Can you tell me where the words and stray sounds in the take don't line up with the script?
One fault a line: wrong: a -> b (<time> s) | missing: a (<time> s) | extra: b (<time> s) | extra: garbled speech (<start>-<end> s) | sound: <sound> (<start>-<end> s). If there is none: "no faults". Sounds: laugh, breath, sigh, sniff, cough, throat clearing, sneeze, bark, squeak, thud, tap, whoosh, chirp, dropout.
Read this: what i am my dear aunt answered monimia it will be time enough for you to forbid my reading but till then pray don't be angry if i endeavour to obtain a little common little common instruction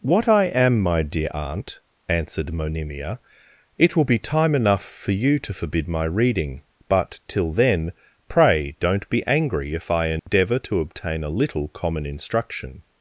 sound: dropout (10.2-10.3 s)
missing: little common (12.0 s)